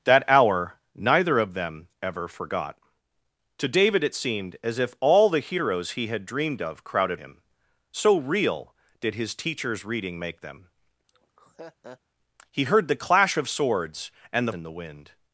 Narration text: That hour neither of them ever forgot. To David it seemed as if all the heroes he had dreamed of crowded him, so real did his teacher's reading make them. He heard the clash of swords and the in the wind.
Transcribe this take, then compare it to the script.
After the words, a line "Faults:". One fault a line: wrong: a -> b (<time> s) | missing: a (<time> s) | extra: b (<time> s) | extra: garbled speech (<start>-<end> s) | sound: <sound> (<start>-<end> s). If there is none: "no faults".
That hour neither of them ever forgot. To David it seemed as if all the heroes he had dreamed of crowded him, so real did his teacher's reading make them. He heard the clash of swords and the in the wind.
Faults:
sound: laugh (11.1-12.0 s)